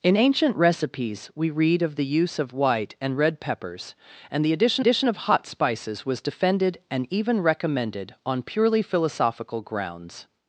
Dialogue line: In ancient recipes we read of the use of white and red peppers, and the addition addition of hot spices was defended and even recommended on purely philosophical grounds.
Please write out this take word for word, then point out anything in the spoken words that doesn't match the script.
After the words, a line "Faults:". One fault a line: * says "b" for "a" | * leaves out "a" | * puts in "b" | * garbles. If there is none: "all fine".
In ancient recipes we read of the use of white and red peppers, and the addition addition of hot spices was defended and even recommended on purely philosophical grounds.
Faults:
all fine